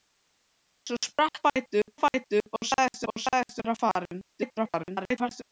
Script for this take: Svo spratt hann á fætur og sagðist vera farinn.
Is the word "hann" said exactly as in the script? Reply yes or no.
no